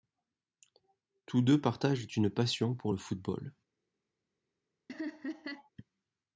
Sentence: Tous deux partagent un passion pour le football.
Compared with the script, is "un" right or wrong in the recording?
wrong